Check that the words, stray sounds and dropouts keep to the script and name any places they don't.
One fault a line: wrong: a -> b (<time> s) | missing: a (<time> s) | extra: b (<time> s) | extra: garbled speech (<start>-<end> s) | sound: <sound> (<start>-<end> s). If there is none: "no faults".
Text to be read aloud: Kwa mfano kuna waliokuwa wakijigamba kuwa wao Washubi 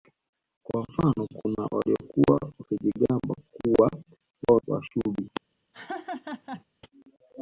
sound: laugh (5.7-6.6 s)